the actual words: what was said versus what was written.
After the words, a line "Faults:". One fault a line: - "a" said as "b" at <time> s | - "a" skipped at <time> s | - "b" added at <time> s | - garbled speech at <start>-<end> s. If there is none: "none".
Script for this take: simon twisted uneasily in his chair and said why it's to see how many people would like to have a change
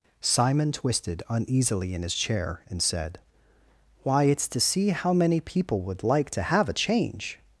simon twisted uneasily in his chair and said why it's to see how many people would like to have a change
Faults:
none